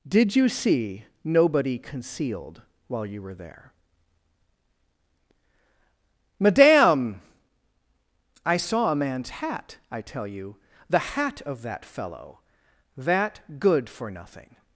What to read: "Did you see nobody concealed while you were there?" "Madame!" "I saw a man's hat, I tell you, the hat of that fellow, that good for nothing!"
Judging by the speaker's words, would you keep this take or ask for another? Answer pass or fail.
pass